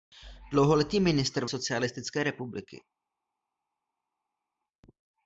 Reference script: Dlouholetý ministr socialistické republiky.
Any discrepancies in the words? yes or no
no